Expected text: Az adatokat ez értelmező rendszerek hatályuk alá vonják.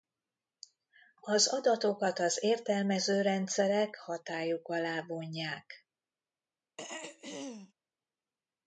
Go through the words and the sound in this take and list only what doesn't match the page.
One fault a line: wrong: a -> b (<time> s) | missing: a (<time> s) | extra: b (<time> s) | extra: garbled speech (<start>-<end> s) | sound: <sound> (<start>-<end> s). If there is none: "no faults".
wrong: ez -> az (2.2 s)
sound: throat clearing (6.8-7.7 s)